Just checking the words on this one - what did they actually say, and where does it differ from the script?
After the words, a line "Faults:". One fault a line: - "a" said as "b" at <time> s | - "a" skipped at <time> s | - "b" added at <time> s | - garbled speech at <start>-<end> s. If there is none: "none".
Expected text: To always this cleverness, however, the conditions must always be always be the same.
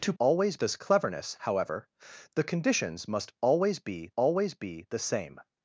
To always this cleverness, however, the conditions must always be always be the same.
Faults:
none